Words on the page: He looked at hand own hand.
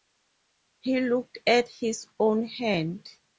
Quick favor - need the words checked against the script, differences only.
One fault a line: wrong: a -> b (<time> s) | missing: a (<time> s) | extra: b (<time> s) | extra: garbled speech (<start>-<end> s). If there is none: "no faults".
wrong: hand -> his (1.7 s)